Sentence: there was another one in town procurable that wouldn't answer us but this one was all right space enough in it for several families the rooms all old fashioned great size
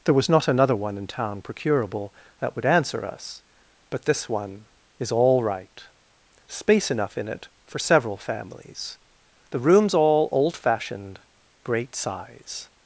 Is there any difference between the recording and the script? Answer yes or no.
yes